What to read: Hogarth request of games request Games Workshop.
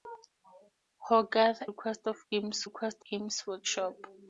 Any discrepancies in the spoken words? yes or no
no